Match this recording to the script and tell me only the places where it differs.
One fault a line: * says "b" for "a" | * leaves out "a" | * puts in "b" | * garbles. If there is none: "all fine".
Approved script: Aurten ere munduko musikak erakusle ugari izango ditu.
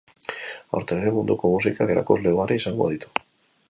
all fine